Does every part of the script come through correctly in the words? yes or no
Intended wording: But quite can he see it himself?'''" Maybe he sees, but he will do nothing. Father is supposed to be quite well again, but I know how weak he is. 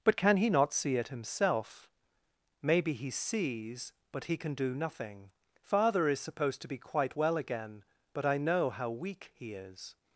no